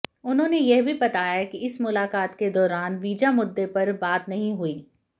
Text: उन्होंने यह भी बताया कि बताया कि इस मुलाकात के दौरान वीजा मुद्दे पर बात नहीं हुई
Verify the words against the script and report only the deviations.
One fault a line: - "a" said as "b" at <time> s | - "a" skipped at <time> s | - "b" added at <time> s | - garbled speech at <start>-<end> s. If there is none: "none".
- "बताया कि" skipped at 1.6 s